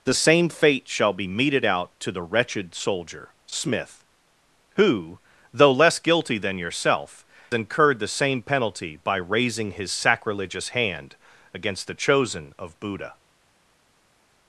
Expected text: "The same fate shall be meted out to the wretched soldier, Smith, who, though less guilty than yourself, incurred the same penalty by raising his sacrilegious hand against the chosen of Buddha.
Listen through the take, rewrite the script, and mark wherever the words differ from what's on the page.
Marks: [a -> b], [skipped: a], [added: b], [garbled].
"The same fate shall be meted out to the wretched soldier, Smith, who, though less guilty than yourself, incurred the same penalty by raising his sacrilegious hand against the chosen of Buddha.